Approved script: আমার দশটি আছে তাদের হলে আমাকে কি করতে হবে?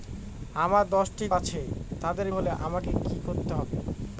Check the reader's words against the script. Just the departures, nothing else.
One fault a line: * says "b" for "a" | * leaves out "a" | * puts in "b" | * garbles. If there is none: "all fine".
all fine